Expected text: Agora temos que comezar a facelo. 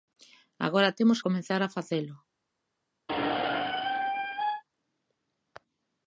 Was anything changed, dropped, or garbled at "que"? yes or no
yes